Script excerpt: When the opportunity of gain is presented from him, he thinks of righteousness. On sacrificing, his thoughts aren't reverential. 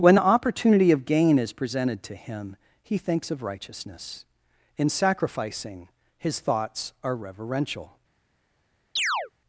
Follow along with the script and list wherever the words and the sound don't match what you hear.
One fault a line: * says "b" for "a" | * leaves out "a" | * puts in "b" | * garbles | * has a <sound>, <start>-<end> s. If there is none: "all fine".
* says "to" for "from"
* says "In" for "On"
* says "are" for "aren't"
* has a chirp, 9.0-9.3 s